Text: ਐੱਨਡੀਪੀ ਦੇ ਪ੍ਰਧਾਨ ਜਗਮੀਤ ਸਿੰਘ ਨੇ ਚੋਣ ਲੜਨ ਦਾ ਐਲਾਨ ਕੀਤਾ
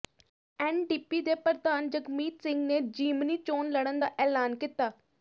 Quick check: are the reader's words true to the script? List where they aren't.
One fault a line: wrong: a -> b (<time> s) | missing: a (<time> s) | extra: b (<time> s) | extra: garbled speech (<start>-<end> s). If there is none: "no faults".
extra: ਜ਼ਿਮਨੀ (2.8 s)